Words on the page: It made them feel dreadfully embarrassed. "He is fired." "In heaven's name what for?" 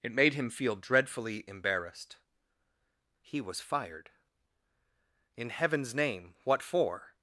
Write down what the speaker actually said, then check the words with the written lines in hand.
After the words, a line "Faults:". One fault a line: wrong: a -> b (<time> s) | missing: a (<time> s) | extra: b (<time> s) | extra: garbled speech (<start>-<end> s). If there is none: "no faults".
It made him feel dreadfully embarrassed. "He was fired." "In heaven's name what for?"
Faults:
wrong: them -> him (0.3 s)
wrong: is -> was (3.4 s)